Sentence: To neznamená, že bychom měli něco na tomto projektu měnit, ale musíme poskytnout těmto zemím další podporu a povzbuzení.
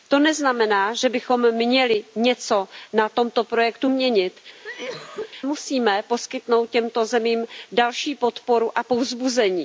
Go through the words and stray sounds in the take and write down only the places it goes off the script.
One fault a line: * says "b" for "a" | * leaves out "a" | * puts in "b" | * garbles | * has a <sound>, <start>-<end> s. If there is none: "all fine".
* leaves out "ale"
* has a cough, 4.6-5.3 s